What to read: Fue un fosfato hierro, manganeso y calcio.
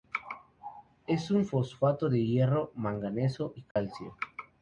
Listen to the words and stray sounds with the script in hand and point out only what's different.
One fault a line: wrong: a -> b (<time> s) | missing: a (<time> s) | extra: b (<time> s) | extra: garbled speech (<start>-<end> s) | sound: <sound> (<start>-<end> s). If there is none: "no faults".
wrong: Fue -> Es (1.1 s)
extra: de (2.1 s)
sound: dropout (3.7-3.8 s)